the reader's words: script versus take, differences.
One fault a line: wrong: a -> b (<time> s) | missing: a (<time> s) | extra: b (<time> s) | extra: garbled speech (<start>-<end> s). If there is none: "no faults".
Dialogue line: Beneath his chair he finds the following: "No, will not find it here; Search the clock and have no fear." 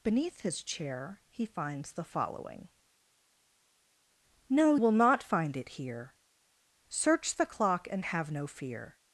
no faults